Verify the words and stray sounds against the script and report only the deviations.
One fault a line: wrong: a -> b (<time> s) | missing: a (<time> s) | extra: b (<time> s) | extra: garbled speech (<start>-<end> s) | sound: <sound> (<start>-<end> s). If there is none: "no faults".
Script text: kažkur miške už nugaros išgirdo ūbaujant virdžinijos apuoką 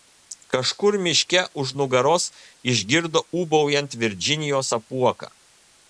no faults